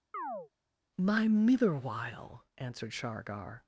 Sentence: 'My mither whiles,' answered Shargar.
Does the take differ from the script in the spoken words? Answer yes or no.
yes